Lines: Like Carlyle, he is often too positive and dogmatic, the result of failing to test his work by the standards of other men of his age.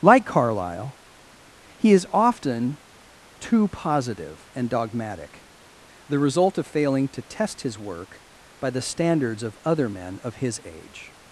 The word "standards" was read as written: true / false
true